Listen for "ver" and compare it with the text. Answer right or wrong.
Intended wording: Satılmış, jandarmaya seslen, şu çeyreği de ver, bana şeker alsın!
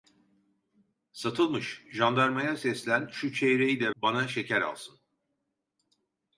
wrong